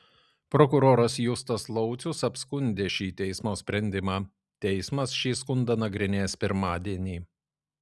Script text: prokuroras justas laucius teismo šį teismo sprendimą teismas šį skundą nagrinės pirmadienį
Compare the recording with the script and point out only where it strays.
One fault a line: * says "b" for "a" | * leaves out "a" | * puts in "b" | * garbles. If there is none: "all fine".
* says "apskundė" for "teismo"